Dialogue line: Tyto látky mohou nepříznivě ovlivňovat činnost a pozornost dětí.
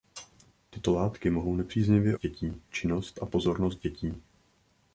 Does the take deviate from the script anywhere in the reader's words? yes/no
yes